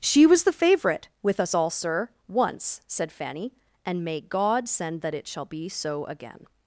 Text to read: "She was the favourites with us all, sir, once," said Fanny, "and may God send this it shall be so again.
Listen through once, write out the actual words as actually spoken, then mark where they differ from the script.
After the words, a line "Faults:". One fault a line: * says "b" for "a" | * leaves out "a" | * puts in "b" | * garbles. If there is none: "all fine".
"She was the favourite with us all, sir, once," said Fanny, "and may God send that it shall be so again.
Faults:
* says "favourite" for "favourites"
* says "that" for "this"